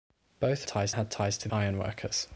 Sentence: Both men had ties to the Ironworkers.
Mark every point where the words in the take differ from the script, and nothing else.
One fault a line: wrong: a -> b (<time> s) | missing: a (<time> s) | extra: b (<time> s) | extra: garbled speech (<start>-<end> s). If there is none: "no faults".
wrong: men -> ties (0.6 s)
missing: the (1.5 s)